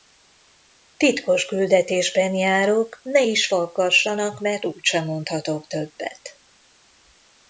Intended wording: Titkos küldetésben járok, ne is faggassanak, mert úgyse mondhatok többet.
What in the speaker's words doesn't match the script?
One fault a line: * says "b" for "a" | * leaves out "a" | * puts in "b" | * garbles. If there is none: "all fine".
all fine